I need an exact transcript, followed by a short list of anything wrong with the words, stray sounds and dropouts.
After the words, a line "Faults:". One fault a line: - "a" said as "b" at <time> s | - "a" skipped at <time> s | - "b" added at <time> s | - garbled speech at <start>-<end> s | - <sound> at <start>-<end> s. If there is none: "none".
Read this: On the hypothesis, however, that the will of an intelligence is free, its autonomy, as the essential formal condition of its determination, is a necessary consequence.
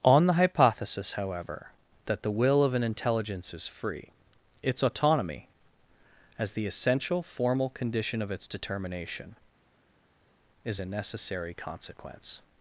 On the hypothesis, however, that the will of an intelligence is free, its autonomy, as the essential formal condition of its determination, is a necessary consequence.
Faults:
none